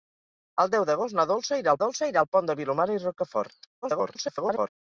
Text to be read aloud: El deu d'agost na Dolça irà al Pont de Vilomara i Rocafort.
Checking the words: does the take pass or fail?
fail